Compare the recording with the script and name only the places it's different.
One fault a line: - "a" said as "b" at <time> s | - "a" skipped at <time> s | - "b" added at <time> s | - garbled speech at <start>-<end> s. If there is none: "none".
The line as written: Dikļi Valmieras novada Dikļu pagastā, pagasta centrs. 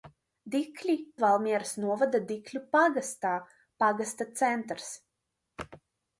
none